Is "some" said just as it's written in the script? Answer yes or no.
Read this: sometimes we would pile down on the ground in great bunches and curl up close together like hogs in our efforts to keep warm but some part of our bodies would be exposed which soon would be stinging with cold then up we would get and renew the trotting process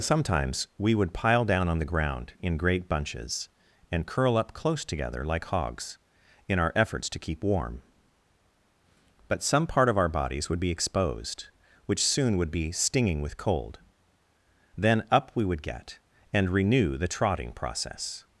yes